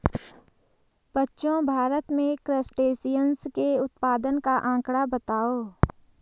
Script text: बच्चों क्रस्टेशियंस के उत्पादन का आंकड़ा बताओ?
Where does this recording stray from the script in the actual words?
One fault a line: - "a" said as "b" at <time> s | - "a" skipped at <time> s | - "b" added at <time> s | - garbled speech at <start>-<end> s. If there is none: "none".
- "भारत में" added at 1.6 s